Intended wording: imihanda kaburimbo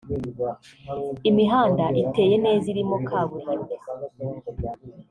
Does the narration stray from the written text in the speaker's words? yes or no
yes